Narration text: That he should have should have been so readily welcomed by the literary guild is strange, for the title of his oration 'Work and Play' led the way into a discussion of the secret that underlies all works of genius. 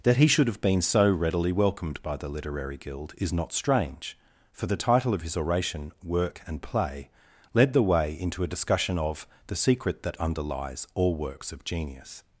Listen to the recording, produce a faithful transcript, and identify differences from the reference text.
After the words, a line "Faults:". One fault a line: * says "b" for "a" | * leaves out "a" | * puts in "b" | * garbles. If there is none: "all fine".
That he should have been so readily welcomed by the literary guild is not strange, for the title of his oration 'Work and Play' led the way into a discussion of the secret that underlies all works of genius.
Faults:
* leaves out "should have"
* puts in "not"